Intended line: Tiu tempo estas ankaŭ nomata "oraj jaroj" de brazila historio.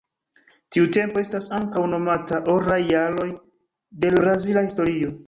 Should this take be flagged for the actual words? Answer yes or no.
no